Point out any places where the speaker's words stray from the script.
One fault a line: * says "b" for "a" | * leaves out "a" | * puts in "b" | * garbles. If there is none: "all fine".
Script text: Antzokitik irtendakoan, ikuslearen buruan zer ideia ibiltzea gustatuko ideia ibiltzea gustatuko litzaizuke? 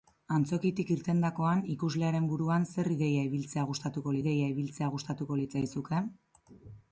all fine